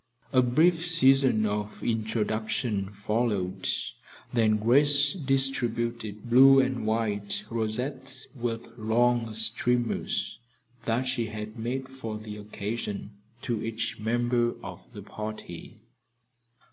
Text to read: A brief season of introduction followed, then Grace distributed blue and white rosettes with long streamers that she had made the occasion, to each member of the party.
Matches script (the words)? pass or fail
fail